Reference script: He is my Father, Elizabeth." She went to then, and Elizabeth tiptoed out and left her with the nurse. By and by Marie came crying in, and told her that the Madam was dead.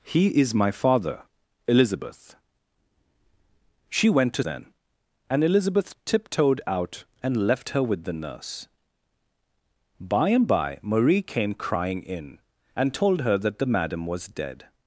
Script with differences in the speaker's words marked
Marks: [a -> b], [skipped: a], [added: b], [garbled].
He is my Father, Elizabeth." She went to then, and Elizabeth tiptoed out and left her with the nurse. By and by Marie came crying in, and told her that the Madam was dead.